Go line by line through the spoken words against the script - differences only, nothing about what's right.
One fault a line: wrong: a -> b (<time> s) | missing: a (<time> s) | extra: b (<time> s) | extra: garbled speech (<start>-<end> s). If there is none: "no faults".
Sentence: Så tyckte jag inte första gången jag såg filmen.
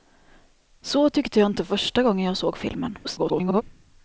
extra: garbled speech (3.0-3.6 s)